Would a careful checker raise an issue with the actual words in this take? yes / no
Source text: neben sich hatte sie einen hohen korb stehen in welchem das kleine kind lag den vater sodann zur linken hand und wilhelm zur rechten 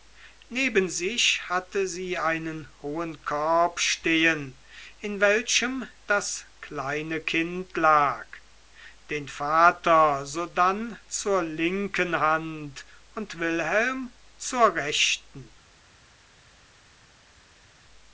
no